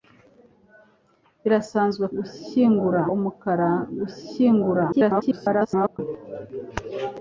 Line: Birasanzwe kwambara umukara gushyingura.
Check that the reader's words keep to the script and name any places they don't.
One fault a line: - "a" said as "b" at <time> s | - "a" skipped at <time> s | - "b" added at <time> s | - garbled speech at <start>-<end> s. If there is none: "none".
- "kwambara" said as "gushyingura" at 2.2 s
- garbled speech at 4.9-6.0 s